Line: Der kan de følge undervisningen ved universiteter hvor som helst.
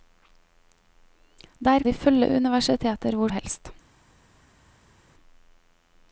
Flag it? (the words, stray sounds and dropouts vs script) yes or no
yes